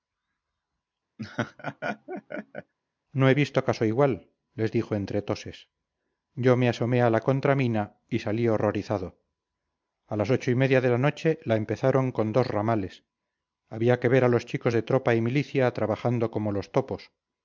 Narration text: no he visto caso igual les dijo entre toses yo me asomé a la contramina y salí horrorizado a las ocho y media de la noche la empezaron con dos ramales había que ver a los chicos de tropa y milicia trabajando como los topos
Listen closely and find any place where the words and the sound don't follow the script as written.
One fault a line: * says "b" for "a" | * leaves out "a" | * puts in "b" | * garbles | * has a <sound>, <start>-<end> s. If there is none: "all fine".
* has a laugh, 1.2-2.7 s